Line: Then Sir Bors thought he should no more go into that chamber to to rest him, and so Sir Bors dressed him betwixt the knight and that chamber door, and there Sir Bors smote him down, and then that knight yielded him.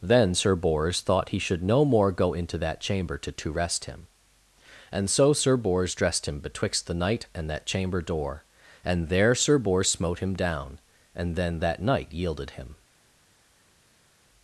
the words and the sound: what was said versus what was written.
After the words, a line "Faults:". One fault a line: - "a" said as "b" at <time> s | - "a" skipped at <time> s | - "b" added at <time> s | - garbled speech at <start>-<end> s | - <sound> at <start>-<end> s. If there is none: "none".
Then Sir Bors thought he should no more go into that chamber to to rest him, and so Sir Bors dressed him betwixt the knight and that chamber door, and there Sir Bors smote him down, and then that knight yielded him.
Faults:
none